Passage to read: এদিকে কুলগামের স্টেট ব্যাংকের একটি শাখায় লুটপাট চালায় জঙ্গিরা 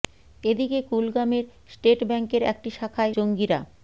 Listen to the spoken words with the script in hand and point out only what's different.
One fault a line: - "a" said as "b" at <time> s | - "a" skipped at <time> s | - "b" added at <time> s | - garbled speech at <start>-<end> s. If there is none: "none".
- "লুটপাট চালায়" skipped at 3.1 s